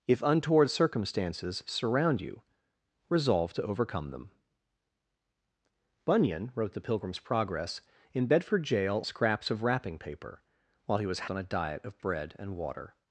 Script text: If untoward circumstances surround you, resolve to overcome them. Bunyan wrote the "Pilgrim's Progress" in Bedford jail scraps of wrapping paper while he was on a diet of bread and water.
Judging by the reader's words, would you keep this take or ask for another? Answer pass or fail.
pass